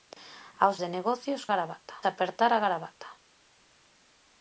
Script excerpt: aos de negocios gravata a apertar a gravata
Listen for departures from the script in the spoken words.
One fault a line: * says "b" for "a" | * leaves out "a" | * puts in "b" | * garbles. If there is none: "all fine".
all fine